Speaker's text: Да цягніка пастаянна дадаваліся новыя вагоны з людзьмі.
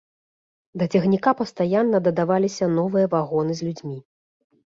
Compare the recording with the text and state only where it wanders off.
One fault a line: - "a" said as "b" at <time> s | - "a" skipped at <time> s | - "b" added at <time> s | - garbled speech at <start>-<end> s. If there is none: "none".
none